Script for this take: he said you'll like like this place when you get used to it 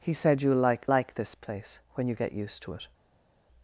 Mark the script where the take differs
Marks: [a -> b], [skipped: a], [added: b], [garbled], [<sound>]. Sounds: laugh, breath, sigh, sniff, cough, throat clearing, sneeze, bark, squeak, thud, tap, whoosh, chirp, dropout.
he said you'll like like this place when you get used to it